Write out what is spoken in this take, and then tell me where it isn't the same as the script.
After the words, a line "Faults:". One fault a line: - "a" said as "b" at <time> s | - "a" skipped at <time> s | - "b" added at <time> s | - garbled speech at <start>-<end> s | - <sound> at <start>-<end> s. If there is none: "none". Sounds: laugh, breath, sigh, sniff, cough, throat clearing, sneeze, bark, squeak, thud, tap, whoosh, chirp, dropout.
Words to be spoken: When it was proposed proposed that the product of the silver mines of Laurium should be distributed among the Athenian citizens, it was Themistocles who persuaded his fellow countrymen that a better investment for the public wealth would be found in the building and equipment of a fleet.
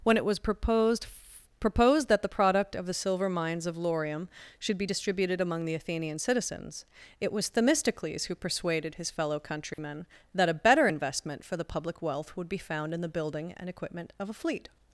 When it was proposed proposed that the product of the silver mines of Laurium should be distributed among the Athenian citizens, it was Themistocles who persuaded his fellow countrymen that a better investment for the public wealth would be found in the building and equipment of a fleet.
Faults:
- dropout at 9.7-9.8 s